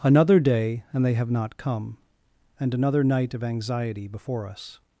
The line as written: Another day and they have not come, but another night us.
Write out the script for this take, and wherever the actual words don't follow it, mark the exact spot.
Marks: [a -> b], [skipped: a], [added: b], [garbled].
Another day and they have not come, [but -> and] another night [added: of anxiety before] us.